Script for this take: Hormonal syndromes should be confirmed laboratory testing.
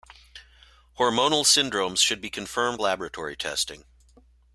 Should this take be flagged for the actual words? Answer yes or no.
no